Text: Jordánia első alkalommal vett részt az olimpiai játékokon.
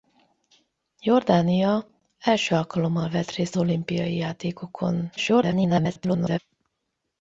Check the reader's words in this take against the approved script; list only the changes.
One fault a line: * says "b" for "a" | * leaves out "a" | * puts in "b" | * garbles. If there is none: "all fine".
* leaves out "az"
* garbles